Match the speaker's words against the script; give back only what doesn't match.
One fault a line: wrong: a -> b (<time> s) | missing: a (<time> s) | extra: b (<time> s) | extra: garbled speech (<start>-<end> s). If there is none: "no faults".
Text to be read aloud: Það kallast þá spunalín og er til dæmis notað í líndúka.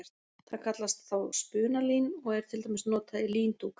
no faults